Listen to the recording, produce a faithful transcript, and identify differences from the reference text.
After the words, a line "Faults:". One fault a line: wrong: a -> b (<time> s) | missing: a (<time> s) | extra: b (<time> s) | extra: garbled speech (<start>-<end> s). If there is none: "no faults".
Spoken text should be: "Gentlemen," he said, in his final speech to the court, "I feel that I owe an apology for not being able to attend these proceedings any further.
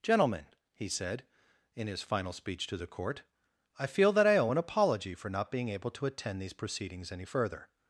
"Gentlemen," he said, in his final speech to the court, "I feel that I owe an apology for not being able to attend these proceedings any further.
Faults:
no faults